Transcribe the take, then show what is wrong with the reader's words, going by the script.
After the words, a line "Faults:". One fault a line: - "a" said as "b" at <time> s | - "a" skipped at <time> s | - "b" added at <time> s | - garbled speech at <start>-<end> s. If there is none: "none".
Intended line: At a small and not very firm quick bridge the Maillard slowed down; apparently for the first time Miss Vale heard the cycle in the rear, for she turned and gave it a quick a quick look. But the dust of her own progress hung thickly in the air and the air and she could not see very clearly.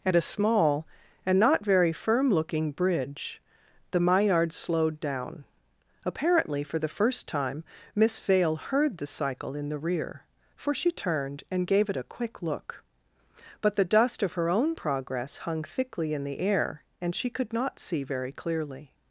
At a small and not very firm looking bridge the Maillard slowed down; apparently for the first time Miss Vale heard the cycle in the rear, for she turned and gave it a quick look. But the dust of her own progress hung thickly in the air and she could not see very clearly.
Faults:
- "quick" said as "looking" at 2.3 s
- "a quick" skipped at 12.4 s
- "the air and" skipped at 17.1 s